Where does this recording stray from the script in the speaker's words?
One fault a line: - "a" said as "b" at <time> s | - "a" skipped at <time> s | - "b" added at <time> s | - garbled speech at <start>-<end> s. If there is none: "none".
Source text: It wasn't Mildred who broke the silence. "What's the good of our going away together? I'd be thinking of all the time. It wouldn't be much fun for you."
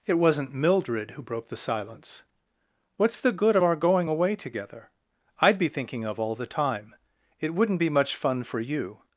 none